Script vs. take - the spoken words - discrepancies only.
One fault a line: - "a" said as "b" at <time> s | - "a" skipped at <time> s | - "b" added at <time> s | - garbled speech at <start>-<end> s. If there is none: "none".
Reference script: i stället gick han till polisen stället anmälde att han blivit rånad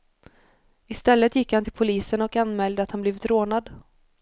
- "stället" said as "och" at 2.2 s